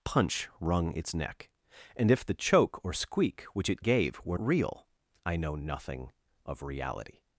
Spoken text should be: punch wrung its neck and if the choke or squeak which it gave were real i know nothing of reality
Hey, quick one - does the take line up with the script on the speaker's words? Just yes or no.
yes